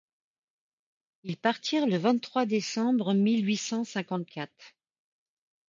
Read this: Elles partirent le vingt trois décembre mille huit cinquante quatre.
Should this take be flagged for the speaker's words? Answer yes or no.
yes